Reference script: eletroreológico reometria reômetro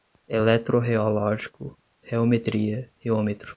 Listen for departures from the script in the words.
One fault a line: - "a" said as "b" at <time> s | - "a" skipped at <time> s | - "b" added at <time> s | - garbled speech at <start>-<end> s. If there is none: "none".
none